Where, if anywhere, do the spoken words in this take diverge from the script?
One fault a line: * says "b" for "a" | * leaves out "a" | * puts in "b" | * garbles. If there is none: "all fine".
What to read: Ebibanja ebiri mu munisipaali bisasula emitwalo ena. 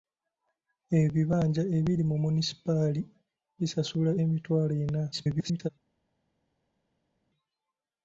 * garbles